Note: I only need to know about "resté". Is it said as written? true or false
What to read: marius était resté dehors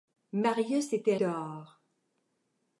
false